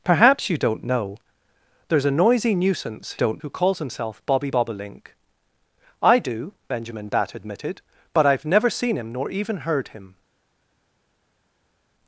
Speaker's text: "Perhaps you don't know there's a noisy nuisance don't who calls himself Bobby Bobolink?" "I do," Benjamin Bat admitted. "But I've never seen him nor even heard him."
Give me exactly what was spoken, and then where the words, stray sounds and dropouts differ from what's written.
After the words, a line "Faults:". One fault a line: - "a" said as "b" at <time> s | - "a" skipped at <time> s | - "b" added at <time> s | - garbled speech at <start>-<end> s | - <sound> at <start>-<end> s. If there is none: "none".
"Perhaps you don't know there's a noisy nuisance don't who calls himself Bobby Bobolink?" "I do," Benjamin Bat admitted. "But I've never seen him nor even heard him."
Faults:
none